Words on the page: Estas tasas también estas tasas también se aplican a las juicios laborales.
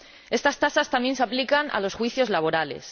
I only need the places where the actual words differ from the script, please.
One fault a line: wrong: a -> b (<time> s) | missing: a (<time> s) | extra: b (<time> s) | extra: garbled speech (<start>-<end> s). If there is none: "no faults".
missing: estas tasas también (1.1 s)
wrong: las -> los (1.8 s)